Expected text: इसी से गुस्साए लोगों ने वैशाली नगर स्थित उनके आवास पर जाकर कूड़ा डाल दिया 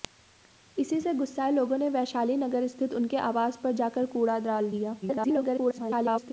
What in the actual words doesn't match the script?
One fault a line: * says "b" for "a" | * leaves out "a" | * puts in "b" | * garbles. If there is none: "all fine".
* garbles